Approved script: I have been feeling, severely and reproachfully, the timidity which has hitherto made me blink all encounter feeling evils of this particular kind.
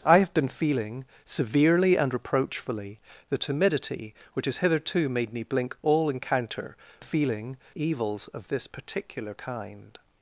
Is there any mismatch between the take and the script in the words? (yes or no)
no